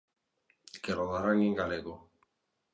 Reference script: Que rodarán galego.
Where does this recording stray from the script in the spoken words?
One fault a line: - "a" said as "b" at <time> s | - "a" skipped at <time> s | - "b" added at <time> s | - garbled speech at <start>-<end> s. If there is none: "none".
- "en" added at 1.4 s